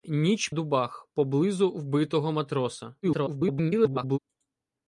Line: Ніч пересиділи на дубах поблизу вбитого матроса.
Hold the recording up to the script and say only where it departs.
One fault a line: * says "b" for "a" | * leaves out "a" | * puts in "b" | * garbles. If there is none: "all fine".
* leaves out "пересиділи на"
* garbles